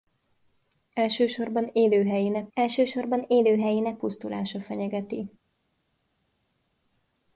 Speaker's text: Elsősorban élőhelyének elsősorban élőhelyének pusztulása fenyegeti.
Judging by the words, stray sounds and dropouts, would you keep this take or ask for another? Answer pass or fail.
pass